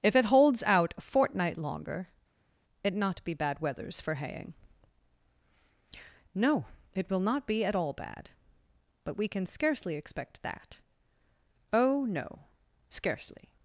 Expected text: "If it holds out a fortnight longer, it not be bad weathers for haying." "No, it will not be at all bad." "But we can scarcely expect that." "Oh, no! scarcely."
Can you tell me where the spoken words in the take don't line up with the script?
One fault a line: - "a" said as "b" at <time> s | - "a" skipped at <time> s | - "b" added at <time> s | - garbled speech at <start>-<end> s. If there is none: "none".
none